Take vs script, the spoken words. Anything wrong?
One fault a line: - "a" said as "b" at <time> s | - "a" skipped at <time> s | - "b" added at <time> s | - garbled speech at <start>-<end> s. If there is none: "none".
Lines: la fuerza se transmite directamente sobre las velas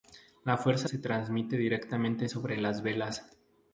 none